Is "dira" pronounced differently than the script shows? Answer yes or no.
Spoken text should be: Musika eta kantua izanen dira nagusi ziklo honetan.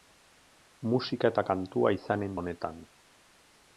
yes